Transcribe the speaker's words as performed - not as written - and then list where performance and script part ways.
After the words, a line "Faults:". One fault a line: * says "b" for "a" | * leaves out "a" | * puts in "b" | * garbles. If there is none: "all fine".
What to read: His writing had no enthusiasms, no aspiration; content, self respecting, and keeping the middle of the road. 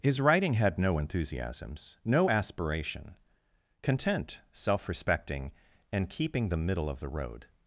His writing had no enthusiasms, no aspiration; content, self respecting, and keeping the middle of the road.
Faults:
all fine